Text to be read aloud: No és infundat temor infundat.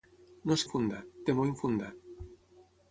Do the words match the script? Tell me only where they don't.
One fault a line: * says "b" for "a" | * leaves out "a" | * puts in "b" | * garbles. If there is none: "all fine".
all fine